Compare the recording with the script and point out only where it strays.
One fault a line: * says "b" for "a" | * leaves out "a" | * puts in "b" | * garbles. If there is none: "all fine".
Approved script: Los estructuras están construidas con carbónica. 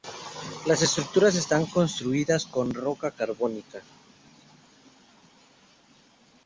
* says "Las" for "Los"
* puts in "roca"